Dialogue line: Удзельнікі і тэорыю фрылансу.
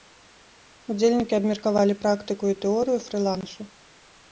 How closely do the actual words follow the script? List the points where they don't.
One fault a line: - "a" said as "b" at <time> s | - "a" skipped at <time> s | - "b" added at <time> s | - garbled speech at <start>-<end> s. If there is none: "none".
- "абмеркавалі практыку" added at 1.4 s